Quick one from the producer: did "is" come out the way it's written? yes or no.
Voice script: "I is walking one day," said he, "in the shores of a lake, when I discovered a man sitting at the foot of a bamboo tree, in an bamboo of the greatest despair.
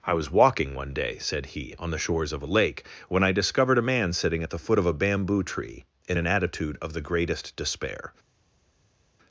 no